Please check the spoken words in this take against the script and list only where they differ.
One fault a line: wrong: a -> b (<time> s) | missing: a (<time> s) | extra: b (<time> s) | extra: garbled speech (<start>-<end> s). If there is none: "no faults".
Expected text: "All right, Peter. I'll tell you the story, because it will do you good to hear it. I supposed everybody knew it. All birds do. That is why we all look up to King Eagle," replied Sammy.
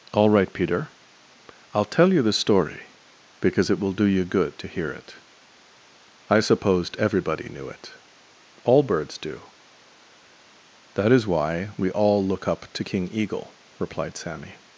no faults